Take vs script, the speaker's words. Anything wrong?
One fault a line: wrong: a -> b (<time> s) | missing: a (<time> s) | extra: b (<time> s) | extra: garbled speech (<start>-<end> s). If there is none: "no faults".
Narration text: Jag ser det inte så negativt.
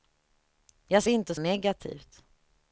missing: ser (1.0 s)
missing: så (1.3 s)